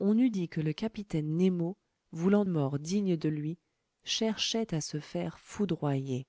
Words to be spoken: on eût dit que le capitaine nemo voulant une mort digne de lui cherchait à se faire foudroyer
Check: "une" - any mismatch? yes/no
yes